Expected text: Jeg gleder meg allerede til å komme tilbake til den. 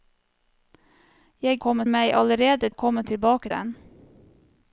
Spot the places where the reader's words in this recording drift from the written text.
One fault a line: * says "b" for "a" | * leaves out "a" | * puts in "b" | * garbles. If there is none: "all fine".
* says "komme" for "gleder"
* leaves out "til"
* leaves out "til"